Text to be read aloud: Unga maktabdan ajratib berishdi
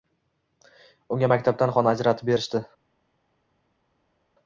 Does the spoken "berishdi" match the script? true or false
true